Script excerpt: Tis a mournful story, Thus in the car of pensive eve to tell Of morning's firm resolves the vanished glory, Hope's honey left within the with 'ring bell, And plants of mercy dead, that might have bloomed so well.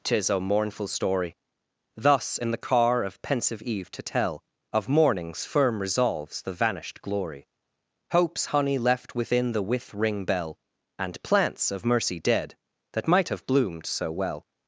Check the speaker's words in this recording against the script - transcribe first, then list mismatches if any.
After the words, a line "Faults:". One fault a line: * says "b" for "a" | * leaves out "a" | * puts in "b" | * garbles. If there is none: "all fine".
Tis a mournful story, Thus in the car of pensive eve to tell Of morning's firm resolves the vanished glory, Hope's honey left within the with 'ring bell, And plants of mercy dead, that might have bloomed so well.
Faults:
all fine